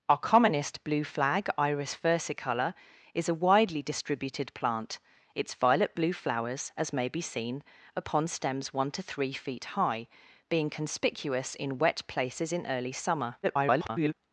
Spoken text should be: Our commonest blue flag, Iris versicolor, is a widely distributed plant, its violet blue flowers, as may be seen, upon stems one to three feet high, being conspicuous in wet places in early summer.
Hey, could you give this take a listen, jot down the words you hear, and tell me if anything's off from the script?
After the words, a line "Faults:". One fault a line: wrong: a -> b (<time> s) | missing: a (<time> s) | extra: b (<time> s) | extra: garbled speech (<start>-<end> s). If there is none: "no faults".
Our commonest blue flag, Iris versicolor, is a widely distributed plant, its violet blue flowers, as may be seen, upon stems one to three feet high, being conspicuous in wet places in early summer. [garbled]
Faults:
extra: garbled speech (13.4-14.1 s)